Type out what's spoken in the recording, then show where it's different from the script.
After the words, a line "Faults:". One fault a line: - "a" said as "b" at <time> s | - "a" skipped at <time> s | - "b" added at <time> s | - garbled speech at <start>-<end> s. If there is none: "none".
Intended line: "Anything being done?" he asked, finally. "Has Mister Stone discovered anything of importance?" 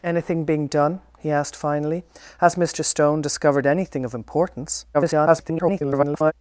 "Anything being done?" he asked, finally. "Has Mister Stone discovered anything of importance?" [garbled]
Faults:
- garbled speech at 4.9-6.3 s